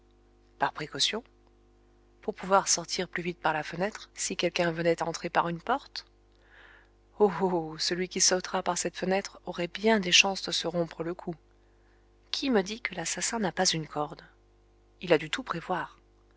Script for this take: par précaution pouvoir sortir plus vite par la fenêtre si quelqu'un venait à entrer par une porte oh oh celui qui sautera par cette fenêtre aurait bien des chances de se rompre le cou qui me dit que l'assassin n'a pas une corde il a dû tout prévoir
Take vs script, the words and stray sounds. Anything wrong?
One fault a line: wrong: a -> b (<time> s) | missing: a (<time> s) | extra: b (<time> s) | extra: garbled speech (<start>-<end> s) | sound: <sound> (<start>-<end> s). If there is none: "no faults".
extra: pour (2.2 s)